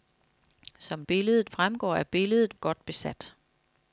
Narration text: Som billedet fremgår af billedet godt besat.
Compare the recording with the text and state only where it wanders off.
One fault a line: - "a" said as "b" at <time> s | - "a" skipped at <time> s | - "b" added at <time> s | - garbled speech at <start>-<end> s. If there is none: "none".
none